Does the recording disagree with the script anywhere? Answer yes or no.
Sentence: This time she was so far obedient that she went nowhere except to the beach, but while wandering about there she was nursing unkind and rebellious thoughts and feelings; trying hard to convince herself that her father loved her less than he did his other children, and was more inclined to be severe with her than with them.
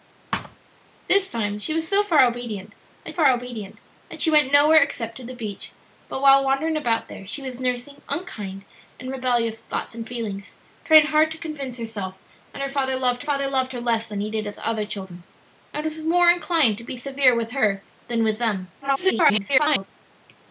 yes